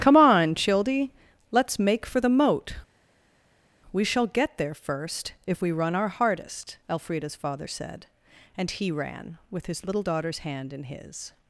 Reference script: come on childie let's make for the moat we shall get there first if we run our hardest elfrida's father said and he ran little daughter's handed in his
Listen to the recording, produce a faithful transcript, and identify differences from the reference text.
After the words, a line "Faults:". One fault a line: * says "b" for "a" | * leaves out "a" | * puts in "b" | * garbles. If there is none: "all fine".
come on childie let's make for the moat we shall get there first if we run our hardest elfrida's father said and he ran with his little daughter's hand in his
Faults:
* puts in "with his"
* says "hand" for "handed"